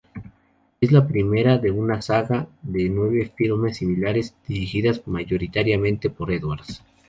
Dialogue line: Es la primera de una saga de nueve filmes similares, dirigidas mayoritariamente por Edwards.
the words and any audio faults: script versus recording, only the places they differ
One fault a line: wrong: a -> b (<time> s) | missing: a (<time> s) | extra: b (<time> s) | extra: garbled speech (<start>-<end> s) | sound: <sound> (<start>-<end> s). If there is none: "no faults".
no faults